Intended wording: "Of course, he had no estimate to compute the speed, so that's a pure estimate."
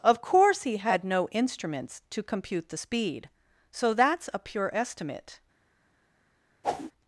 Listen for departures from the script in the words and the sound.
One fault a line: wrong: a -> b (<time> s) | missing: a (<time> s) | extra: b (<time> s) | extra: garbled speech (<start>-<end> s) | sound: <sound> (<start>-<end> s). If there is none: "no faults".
wrong: estimate -> instruments (1.3 s)
sound: whoosh (6.6-6.9 s)